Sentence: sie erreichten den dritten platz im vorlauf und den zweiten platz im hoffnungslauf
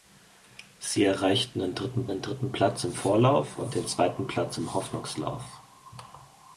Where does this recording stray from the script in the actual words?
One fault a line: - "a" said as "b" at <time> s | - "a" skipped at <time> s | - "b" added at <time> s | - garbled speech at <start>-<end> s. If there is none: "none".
- "den dritten" added at 2.1 s